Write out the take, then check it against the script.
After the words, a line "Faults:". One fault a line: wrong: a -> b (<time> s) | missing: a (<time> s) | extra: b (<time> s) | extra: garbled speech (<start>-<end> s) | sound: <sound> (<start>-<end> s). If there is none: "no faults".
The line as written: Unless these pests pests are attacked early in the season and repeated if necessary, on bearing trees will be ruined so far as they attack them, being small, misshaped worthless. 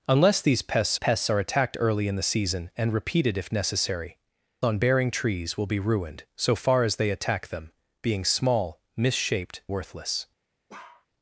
Unless these pests pests are attacked early in the season and repeated if necessary, on bearing trees will be ruined so far as they attack them, being small, misshaped worthless.
Faults:
sound: bark (10.7-11.1 s)